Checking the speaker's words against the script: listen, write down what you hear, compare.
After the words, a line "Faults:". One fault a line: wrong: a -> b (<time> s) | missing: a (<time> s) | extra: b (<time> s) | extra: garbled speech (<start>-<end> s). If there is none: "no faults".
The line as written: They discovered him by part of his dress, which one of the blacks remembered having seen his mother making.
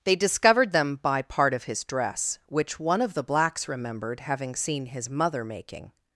They discovered them by part of his dress, which one of the blacks remembered having seen his mother making.
Faults:
wrong: him -> them (0.7 s)